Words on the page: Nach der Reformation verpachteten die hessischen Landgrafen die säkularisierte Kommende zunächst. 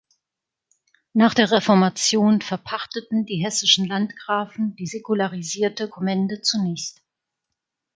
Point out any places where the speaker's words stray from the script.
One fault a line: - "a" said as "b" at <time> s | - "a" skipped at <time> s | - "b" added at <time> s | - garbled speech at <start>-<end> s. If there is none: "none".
none